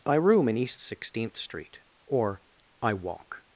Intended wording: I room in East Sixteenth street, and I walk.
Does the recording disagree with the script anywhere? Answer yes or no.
yes